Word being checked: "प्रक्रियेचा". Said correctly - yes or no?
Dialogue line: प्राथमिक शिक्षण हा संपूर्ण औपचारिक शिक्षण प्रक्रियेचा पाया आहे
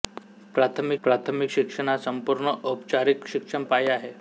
no